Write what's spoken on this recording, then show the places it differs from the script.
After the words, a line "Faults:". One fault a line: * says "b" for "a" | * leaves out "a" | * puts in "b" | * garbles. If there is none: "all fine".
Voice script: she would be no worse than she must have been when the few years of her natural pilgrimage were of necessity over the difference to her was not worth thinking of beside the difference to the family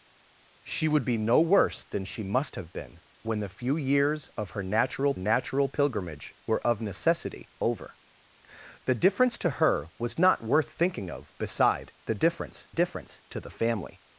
she would be no worse than she must have been when the few years of her natural natural pilgrimage were of necessity over the difference to her was not worth thinking of beside the difference difference to the family
Faults:
* puts in "natural"
* puts in "difference"